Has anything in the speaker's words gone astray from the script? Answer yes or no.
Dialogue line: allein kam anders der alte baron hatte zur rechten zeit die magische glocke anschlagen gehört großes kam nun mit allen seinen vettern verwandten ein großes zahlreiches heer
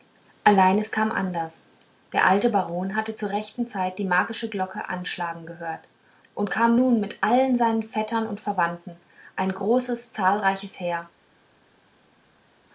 yes